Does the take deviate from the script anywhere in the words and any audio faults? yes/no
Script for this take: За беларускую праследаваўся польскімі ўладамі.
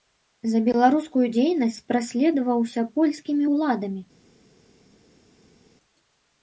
yes